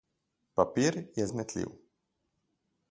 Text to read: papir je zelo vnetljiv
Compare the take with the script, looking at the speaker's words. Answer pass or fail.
fail